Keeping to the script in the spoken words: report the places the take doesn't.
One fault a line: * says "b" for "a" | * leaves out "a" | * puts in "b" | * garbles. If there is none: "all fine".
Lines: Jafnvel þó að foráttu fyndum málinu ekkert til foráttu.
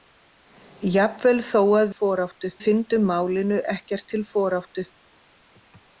all fine